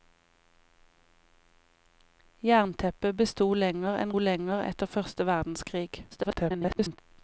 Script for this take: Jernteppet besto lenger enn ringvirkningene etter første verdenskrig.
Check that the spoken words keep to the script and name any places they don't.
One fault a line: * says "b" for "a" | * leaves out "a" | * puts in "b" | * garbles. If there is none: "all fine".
* says "lenger" for "ringvirkningene"
* garbles